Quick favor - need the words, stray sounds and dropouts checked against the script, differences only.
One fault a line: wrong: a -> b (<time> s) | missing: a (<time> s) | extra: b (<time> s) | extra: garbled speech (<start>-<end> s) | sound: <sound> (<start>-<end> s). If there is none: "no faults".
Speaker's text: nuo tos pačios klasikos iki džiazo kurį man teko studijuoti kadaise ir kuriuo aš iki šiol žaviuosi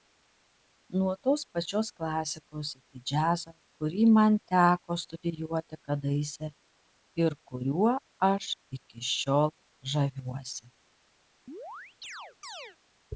sound: chirp (11.5-12.8 s)